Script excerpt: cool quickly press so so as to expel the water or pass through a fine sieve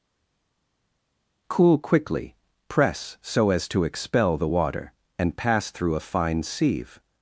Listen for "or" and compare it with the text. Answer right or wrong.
wrong